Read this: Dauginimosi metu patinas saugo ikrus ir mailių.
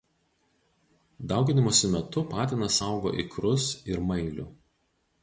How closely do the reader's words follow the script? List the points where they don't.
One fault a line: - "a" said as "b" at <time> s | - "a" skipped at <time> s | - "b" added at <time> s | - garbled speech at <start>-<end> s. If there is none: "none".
none